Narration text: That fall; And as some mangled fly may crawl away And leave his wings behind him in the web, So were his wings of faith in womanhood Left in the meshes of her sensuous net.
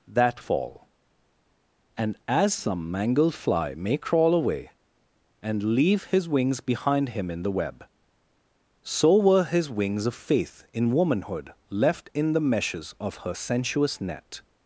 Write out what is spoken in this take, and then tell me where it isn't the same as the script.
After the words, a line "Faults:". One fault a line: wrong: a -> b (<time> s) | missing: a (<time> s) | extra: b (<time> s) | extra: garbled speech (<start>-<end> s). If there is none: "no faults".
That fall; And as some mangled fly may crawl away And leave his wings behind him in the web, So were his wings of faith in womanhood Left in the meshes of her sensuous net.
Faults:
no faults